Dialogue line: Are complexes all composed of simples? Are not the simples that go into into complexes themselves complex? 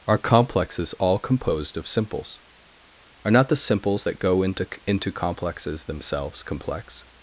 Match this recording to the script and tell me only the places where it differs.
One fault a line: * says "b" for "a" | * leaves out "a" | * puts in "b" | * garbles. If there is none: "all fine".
all fine